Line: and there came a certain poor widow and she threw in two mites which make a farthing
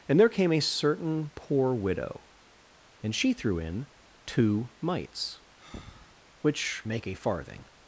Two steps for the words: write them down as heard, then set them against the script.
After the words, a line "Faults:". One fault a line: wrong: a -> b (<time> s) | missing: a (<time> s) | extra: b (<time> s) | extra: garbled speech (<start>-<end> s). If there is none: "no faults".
and there came a certain poor widow and she threw in two mites which make a farthing
Faults:
no faults